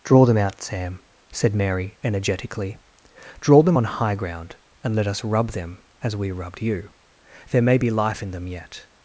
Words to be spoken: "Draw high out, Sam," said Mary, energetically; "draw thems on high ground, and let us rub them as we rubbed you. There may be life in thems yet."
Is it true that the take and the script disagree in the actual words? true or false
true